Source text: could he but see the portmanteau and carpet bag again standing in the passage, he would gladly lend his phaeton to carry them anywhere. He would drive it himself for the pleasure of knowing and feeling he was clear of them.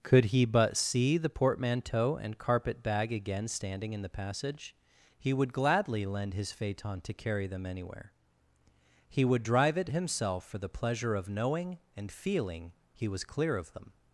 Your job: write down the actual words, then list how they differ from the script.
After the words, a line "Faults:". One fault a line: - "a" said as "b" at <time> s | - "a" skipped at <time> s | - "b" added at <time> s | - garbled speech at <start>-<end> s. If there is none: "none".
could he but see the portmanteau and carpet bag again standing in the passage, he would gladly lend his phaeton to carry them anywhere. He would drive it himself for the pleasure of knowing and feeling he was clear of them.
Faults:
none